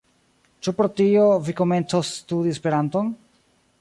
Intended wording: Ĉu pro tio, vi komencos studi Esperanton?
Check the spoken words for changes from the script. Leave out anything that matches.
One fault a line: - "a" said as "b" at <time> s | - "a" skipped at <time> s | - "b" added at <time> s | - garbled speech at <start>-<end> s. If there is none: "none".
none